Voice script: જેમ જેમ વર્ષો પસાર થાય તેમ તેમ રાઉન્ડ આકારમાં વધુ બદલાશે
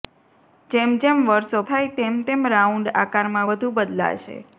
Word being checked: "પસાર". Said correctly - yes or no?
no